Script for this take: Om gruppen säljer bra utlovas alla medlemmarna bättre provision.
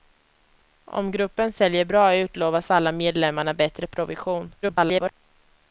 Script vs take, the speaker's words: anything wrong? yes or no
yes